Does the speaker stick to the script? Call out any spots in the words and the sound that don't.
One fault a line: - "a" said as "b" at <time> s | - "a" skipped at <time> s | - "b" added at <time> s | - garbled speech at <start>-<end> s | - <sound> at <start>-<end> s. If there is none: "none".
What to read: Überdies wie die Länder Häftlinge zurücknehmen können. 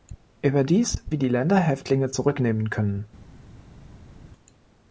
none